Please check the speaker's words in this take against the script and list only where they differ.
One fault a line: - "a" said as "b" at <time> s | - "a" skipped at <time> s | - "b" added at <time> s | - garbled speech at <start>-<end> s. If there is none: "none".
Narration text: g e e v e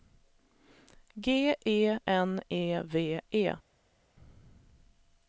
- "n" added at 2.1 s